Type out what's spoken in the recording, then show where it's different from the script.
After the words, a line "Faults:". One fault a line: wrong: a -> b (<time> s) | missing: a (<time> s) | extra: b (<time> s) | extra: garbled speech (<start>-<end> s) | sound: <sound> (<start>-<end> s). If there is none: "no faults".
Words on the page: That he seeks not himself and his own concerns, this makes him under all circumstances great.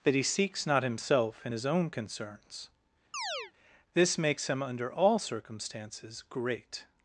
That he seeks not himself and his own concerns, this makes him under all circumstances great.
Faults:
sound: chirp (3.1-3.5 s)